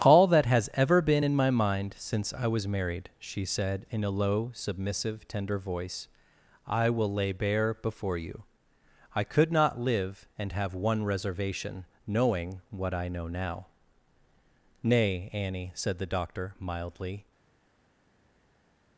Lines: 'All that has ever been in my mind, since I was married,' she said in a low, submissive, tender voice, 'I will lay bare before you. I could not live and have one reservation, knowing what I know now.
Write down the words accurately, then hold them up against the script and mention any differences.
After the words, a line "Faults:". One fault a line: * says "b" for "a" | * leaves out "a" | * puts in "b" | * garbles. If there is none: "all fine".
'All that has ever been in my mind, since I was married,' she said in a low, submissive, tender voice, 'I will lay bare before you. I could not live and have one reservation, knowing what I know now. 'Nay, Annie,' said the Doctor, mildly
Faults:
* puts in "Nay Annie said the Doctor mildly"